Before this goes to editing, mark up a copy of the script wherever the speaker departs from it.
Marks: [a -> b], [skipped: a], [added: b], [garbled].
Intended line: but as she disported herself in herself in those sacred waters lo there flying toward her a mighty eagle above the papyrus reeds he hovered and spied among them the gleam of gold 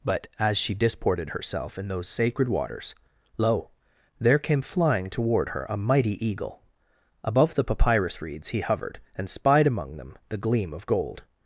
but as she disported herself in [skipped: herself in] those sacred waters lo there [added: came] flying toward her a mighty eagle above the papyrus reeds he hovered and spied among them the gleam of gold